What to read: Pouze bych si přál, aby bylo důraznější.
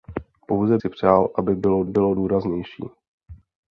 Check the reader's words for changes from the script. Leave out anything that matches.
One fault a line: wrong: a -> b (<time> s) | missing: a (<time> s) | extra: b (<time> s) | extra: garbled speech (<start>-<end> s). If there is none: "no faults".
missing: bych (0.8 s)
extra: bylo (1.9 s)